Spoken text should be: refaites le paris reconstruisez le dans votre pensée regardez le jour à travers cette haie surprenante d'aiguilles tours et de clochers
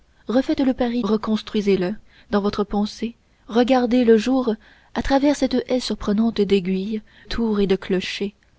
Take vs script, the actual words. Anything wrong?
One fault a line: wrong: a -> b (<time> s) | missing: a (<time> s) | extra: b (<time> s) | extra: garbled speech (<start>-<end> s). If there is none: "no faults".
no faults